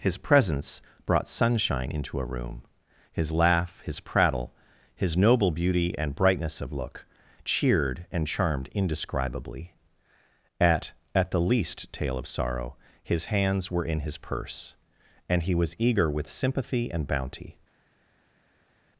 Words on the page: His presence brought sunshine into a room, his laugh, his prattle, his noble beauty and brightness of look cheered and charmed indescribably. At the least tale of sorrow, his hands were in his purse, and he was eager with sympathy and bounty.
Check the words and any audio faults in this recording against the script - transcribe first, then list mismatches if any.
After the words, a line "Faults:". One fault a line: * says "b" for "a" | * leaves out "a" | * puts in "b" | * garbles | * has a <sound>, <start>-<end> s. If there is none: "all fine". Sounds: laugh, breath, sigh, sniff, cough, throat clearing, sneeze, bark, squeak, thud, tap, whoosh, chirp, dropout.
His presence brought sunshine into a room, his laugh, his prattle, his noble beauty and brightness of look cheered and charmed indescribably. At At the least tale of sorrow, his hands were in his purse, and he was eager with sympathy and bounty.
Faults:
* puts in "At"